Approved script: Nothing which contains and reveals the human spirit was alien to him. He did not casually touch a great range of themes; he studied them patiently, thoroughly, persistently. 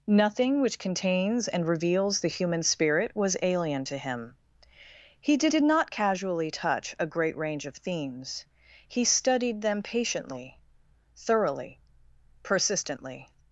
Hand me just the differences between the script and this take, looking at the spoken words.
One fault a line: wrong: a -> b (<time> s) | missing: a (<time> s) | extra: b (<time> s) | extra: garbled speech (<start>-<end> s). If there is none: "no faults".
extra: did (5.5 s)